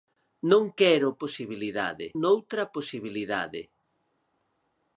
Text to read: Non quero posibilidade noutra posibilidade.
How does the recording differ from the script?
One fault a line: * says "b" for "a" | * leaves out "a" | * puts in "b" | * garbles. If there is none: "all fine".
all fine